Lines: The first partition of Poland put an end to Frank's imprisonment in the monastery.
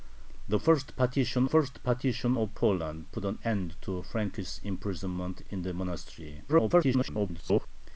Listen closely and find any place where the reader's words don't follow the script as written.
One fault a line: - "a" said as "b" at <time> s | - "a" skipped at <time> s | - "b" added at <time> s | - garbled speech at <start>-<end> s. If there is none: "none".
- "first partition" added at 1.5 s
- garbled speech at 6.5-7.7 s